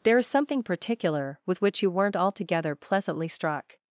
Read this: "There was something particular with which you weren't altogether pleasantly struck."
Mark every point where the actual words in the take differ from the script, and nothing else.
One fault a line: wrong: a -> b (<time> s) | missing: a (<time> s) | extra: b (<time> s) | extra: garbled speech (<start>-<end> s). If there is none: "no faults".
wrong: was -> is (0.2 s)